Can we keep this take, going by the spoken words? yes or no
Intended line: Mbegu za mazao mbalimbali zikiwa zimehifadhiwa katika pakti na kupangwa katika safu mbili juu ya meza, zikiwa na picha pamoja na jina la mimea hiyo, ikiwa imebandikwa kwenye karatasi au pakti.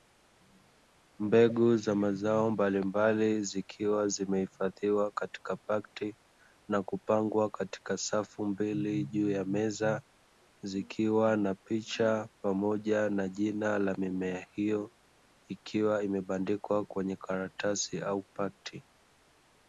yes